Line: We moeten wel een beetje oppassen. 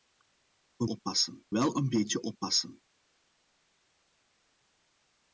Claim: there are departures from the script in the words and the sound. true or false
true